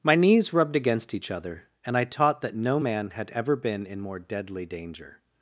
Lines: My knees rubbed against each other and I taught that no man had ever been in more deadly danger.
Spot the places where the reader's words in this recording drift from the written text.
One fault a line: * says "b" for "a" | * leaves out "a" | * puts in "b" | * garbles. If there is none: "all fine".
all fine